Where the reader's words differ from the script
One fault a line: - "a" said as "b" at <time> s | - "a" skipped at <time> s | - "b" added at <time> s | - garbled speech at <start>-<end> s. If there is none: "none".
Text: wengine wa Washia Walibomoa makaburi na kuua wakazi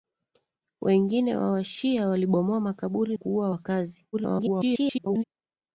- "na" skipped at 3.2 s
- garbled speech at 4.1-5.2 s